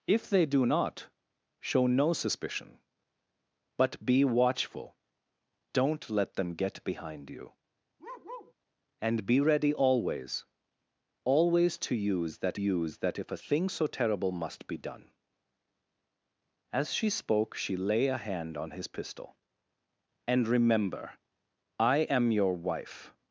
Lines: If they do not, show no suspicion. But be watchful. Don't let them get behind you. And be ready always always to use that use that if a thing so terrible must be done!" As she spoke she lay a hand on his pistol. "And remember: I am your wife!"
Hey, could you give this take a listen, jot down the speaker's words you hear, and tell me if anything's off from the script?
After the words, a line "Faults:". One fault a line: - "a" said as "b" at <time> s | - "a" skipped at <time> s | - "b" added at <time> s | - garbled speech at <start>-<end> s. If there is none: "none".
If they do not, show no suspicion. But be watchful. Don't let them get behind you. And be ready always always to use that use that if a thing so terrible must be done!" As she spoke she lay a hand on his pistol. "And remember: I am your wife!"
Faults:
none